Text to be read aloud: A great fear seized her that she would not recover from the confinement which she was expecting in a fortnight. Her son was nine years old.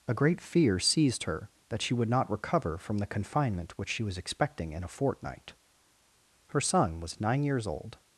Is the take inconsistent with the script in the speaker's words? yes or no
no